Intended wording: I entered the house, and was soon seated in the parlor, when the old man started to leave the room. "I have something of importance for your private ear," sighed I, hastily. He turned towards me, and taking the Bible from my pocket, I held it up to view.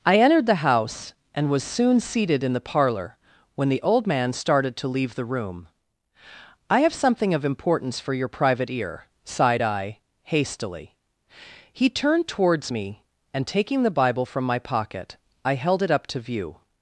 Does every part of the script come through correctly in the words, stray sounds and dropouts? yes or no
yes